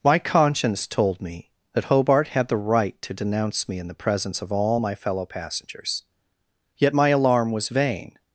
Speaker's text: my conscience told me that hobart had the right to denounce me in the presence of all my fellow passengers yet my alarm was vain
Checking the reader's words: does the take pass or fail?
pass